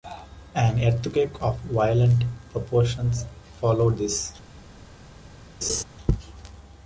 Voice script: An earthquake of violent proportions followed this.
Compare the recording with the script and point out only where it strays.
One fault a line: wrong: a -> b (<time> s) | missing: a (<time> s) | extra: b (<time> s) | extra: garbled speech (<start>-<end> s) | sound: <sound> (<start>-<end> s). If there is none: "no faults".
sound: laugh (5.6-5.8 s)